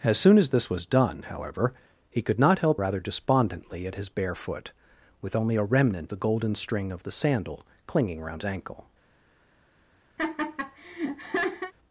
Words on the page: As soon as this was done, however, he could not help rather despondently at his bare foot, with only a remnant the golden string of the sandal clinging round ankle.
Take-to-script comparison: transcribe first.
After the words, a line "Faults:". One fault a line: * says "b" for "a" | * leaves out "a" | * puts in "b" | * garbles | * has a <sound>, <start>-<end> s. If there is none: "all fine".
As soon as this was done, however, he could not help rather despondently at his bare foot, with only a remnant the golden string of the sandal clinging round ankle.
Faults:
* has a laugh, 10.2-11.7 s